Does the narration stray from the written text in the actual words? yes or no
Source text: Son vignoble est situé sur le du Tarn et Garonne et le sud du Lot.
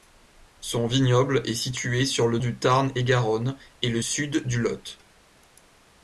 no